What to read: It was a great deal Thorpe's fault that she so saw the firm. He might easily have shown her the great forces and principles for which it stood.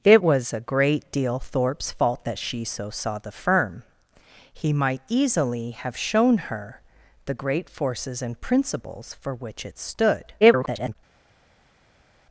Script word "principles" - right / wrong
right